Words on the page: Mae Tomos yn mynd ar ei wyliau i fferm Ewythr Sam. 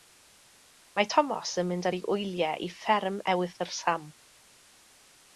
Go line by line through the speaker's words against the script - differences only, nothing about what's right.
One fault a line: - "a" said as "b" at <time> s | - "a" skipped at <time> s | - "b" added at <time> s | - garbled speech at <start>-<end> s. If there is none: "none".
none